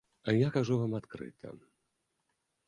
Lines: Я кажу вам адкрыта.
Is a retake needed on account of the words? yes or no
no